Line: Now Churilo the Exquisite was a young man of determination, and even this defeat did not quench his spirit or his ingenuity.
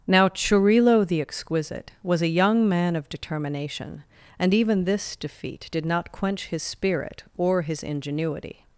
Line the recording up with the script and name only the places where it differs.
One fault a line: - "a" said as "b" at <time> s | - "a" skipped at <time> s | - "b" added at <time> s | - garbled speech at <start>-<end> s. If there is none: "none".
none